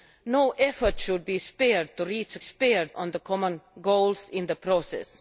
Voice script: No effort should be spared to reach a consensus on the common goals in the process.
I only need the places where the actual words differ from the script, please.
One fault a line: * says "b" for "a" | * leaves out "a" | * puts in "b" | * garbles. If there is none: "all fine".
* says "spared" for "consensus"